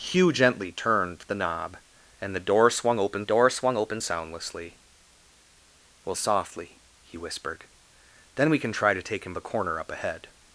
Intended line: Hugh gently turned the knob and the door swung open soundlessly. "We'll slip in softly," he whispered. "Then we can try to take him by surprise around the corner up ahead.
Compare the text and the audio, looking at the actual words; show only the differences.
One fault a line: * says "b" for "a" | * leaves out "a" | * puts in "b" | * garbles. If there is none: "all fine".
* puts in "door swung open"
* leaves out "slip in"
* leaves out "by surprise around"